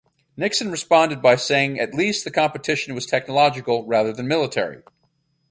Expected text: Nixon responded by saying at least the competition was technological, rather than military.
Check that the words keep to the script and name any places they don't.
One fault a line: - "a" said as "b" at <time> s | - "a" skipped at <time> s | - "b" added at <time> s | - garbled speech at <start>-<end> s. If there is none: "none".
none